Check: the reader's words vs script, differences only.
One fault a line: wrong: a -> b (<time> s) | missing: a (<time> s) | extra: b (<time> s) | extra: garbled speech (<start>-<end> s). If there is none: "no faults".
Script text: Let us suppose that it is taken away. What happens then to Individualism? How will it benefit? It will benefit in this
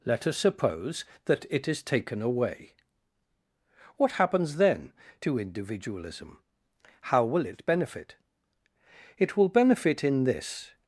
no faults